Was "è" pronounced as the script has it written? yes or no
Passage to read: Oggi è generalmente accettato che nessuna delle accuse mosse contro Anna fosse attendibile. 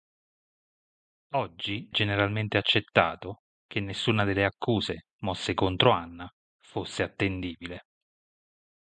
no